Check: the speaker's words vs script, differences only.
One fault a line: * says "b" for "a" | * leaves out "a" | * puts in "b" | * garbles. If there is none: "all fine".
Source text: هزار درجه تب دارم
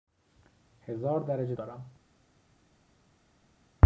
* leaves out "تب"